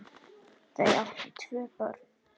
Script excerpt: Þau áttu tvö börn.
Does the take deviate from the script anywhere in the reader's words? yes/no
no